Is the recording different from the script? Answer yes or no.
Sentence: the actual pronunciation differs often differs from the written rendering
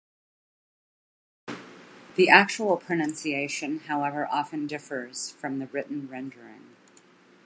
yes